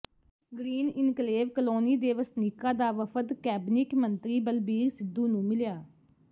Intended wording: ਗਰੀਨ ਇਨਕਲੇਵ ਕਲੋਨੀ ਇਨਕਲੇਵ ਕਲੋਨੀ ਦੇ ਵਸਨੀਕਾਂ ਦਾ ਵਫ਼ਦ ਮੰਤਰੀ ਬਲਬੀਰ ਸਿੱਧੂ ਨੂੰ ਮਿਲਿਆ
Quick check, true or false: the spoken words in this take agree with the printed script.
false